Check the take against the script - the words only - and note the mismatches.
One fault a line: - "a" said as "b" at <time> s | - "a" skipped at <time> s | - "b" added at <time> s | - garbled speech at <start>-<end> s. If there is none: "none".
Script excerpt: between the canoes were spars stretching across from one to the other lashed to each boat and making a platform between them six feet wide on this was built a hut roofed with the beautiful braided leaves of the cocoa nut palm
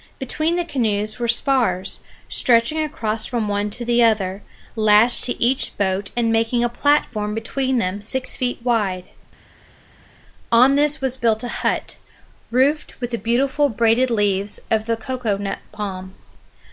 none